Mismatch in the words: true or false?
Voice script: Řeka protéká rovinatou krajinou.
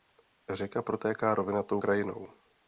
false